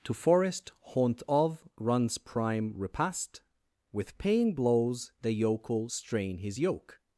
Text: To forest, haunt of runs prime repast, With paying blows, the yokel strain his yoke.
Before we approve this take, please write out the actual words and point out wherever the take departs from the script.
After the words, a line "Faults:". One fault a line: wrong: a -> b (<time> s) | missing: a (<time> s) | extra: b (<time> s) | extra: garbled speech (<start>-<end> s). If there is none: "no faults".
To forest, haunt of runs prime repast, With paying blows, the yokel strain his yoke.
Faults:
no faults